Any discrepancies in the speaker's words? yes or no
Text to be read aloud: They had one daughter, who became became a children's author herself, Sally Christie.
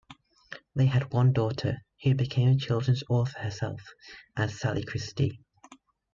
yes